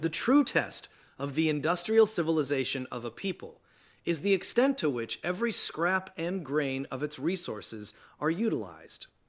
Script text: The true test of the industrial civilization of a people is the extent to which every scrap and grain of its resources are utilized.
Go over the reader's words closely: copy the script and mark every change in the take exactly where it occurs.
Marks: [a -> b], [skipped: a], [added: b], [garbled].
The true test of the industrial civilization of a people is the extent to which every scrap and grain of its resources are utilized.